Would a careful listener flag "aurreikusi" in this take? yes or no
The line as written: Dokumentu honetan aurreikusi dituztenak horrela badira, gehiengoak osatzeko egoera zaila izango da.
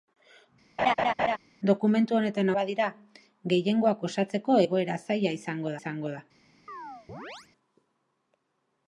yes